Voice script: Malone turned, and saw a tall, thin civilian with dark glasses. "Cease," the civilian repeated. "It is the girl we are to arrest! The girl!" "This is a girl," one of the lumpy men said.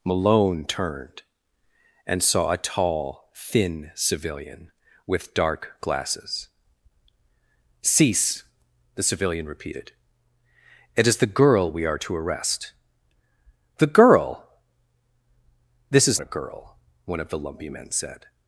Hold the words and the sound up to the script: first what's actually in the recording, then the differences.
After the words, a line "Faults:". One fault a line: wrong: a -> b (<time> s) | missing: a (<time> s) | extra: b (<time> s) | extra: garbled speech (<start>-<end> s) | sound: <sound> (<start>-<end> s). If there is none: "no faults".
Malone turned, and saw a tall, thin civilian with dark glasses. "Cease," the civilian repeated. "It is the girl we are to arrest! The girl!" "This is a girl," one of the lumpy men said.
Faults:
no faults